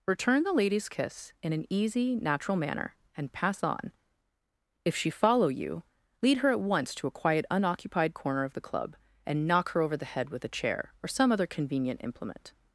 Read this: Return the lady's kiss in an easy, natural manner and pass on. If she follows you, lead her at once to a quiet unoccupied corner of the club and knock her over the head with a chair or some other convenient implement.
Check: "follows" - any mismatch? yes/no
yes